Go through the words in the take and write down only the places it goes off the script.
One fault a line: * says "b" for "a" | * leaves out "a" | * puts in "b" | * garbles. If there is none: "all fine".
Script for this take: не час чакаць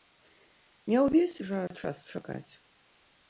* puts in "ўвесь жа"